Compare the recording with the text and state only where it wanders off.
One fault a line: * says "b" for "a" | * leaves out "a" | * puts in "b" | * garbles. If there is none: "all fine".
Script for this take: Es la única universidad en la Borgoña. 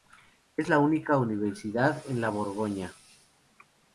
all fine